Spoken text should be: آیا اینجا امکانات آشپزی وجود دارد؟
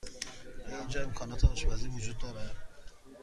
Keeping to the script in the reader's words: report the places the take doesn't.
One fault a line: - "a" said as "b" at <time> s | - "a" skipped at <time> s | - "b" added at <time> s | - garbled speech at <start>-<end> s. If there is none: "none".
none